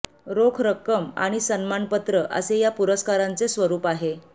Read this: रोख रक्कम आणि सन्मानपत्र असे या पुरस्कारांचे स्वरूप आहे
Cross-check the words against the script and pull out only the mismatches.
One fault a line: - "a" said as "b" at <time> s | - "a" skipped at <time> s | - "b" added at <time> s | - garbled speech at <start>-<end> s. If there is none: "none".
none